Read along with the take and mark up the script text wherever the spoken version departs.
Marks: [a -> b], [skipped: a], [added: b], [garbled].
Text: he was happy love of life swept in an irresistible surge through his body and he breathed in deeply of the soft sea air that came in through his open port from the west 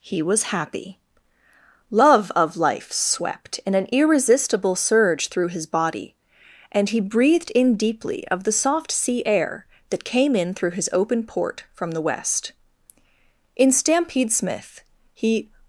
he was happy love of life swept in an irresistible surge through his body and he breathed in deeply of the soft sea air that came in through his open port from the west [added: in stampede smith he]